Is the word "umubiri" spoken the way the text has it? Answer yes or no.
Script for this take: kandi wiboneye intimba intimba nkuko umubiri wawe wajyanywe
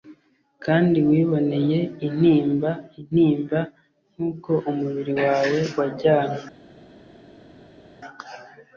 yes